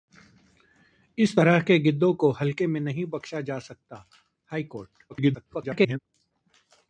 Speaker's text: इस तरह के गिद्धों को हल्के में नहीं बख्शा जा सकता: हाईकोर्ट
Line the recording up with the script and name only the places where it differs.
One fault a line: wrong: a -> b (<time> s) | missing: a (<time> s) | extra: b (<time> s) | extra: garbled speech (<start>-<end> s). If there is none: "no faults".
extra: garbled speech (5.1-6.0 s)